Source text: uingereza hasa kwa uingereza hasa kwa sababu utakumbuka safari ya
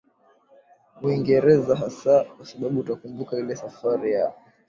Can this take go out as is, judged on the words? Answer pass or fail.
fail